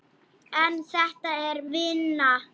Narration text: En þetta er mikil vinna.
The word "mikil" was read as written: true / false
false